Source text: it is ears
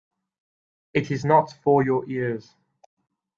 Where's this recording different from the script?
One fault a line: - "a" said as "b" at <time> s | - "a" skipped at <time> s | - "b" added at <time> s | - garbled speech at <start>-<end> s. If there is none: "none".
- "not for your" added at 1.2 s